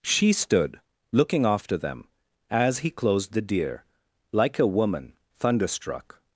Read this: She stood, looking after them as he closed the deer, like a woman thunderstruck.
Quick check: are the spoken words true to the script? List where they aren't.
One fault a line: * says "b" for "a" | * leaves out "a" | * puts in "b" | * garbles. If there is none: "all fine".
all fine